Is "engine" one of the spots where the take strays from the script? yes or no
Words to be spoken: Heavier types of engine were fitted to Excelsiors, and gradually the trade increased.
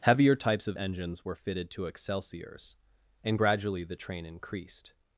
yes